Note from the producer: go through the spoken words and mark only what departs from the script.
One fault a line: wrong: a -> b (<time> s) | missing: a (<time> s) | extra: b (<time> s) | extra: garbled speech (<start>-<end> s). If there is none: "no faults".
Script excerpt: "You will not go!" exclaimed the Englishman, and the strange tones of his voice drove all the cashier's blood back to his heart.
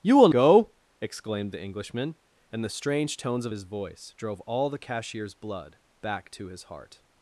missing: not (0.3 s)